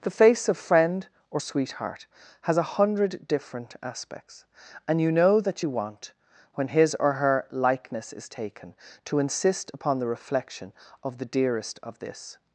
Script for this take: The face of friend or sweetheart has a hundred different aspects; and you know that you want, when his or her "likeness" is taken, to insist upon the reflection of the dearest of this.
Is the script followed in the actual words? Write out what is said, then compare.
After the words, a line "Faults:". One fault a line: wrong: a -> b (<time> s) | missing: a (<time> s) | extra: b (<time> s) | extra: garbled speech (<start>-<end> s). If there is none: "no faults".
The face of friend or sweetheart has a hundred different aspects; and you know that you want, when his or her "likeness" is taken, to insist upon the reflection of the dearest of this.
Faults:
no faults